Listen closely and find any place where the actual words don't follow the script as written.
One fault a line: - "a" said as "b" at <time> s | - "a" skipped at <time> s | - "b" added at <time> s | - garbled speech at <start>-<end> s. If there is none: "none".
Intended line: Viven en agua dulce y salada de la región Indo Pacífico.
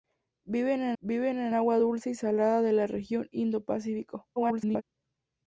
- "viven en" added at 1.0 s
- garbled speech at 4.4-4.8 s